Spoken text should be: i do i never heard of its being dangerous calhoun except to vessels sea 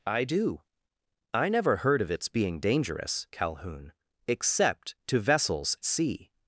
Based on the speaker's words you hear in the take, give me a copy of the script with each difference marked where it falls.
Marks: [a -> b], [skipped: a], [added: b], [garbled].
i do i never heard of its being dangerous calhoun except to vessels sea